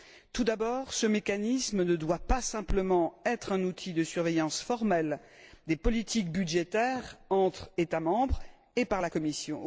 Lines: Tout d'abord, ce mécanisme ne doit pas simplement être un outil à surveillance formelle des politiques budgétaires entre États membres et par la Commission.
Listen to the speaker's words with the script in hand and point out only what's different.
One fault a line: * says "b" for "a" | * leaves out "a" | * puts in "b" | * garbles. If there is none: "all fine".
* says "de" for "à"